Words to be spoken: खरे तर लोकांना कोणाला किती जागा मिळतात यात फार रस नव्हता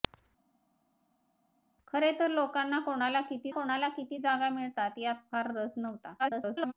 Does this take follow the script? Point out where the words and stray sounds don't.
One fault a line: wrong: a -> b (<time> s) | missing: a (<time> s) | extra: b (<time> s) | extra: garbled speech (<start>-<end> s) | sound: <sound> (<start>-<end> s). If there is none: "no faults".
extra: कोणाला किती (3.5 s)
extra: garbled speech (6.2-6.7 s)